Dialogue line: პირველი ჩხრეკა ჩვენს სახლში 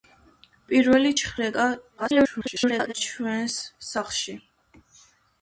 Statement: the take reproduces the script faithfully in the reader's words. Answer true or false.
false